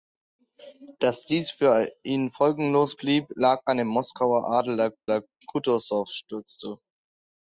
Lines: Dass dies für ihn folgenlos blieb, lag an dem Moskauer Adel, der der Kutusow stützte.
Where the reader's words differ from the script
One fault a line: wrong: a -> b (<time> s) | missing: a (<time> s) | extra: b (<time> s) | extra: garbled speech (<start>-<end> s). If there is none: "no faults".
no faults